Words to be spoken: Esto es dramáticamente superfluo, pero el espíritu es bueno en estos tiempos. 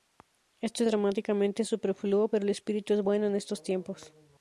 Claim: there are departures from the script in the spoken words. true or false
false